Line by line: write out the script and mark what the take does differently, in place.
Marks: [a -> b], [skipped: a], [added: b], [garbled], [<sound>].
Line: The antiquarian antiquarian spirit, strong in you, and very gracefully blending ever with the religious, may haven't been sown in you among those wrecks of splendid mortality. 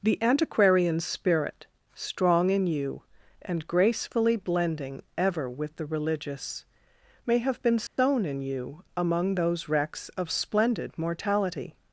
The antiquarian [skipped: antiquarian] spirit, strong in you, and [skipped: very] gracefully blending ever with the religious, may [haven't -> have] been sown [dropout] in you among those wrecks of splendid mortality.